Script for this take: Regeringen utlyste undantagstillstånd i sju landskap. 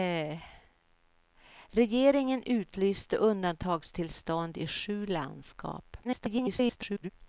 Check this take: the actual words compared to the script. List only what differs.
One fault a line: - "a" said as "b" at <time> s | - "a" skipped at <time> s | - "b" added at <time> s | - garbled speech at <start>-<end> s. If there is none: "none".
- garbled speech at 6.0-7.1 s